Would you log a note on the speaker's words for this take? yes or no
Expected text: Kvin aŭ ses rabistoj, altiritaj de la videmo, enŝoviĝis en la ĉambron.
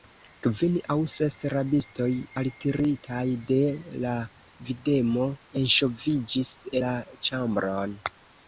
yes